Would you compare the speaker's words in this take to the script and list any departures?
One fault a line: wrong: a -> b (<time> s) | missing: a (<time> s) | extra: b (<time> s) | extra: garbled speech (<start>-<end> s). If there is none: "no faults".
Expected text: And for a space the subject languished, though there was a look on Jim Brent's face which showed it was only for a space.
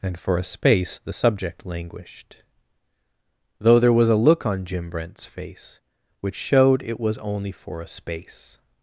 no faults